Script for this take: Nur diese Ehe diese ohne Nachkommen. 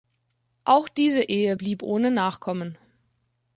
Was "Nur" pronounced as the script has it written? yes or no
no